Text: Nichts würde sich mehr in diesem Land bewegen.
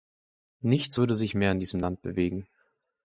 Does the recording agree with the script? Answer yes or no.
yes